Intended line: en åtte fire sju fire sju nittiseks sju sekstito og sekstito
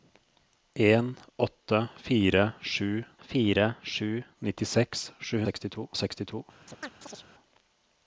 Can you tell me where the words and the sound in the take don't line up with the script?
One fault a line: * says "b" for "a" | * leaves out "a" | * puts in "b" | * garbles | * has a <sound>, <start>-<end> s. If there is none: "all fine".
* has a chirp, 6.6-7.3 s